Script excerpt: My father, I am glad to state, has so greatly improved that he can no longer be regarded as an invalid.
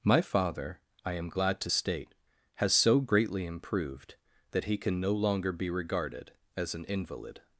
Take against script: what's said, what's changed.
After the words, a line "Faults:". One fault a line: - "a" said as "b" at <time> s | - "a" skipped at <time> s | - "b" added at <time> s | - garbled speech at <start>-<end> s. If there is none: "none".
My father, I am glad to state, has so greatly improved that he can no longer be regarded as an invalid.
Faults:
none